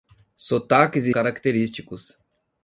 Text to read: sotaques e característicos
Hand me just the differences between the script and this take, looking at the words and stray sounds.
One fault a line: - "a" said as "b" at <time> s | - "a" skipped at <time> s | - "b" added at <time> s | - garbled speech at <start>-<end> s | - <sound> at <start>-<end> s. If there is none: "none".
none